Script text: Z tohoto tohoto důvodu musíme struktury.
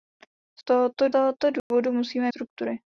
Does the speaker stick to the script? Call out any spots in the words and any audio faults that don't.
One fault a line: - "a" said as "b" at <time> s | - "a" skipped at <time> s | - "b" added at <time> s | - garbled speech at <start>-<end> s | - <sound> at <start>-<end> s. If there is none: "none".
- dropout at 1.6-1.7 s